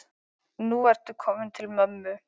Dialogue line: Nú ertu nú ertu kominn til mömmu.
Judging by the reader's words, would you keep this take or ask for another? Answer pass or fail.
fail